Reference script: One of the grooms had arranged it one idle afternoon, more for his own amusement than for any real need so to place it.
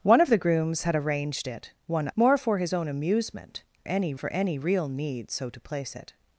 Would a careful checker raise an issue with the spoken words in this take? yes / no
yes